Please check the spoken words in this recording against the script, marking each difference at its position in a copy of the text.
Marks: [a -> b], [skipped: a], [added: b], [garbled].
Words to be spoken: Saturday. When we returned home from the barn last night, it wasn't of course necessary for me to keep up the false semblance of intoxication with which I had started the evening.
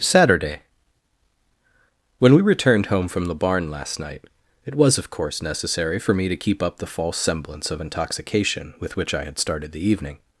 Saturday. When we returned home from the barn last night, it [wasn't -> was] of course necessary for me to keep up the false semblance of intoxication with which I had started the evening.